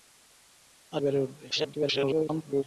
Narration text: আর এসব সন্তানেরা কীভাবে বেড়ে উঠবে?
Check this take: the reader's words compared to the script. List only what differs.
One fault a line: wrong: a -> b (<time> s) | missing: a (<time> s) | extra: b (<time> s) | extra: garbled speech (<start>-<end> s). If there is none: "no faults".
missing: এসব সন্তানেরা কীভাবে (1.0 s)
extra: garbled speech (1.5-2.6 s)